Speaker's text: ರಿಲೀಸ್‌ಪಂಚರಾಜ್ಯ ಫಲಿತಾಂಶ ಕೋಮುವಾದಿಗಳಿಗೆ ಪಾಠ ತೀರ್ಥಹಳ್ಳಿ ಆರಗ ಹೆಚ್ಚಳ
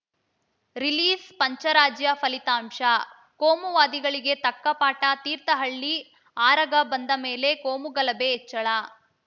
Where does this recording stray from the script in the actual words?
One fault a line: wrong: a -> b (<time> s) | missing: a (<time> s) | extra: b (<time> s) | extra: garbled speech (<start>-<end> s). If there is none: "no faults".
extra: ತಕ್ಕ (4.4 s)
extra: ಬಂದ ಮೇಲೆ ಕೋಮುಗಲಭೆ (6.9 s)